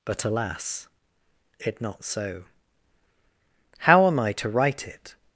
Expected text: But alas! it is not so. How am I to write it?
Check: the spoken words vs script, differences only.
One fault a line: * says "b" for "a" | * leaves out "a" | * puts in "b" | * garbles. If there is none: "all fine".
* leaves out "is"